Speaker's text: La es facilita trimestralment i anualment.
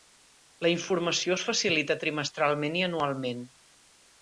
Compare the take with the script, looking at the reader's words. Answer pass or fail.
fail